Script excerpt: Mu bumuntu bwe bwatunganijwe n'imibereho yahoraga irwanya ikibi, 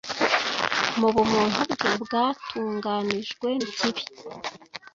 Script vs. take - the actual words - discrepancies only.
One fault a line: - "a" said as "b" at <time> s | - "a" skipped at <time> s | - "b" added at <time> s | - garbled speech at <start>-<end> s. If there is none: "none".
- "n'imibereho yahoraga irwanya" skipped at 3.5 s